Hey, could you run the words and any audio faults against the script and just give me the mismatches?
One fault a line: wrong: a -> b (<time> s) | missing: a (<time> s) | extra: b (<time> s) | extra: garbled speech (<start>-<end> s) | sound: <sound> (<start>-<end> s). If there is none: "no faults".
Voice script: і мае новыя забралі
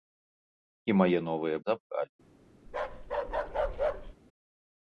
sound: bark (2.7-4.1 s)